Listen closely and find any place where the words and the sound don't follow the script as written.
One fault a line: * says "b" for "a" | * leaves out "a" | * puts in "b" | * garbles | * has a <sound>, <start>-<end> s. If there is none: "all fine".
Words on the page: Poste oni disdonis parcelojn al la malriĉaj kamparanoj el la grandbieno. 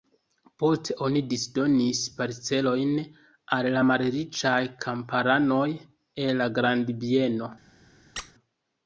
* has a squeak, 8.2-8.3 s